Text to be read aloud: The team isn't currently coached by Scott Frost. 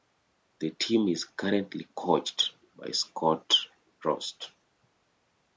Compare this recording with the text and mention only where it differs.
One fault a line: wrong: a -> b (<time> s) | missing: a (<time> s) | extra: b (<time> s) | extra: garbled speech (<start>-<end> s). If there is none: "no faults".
wrong: isn't -> is (1.1 s)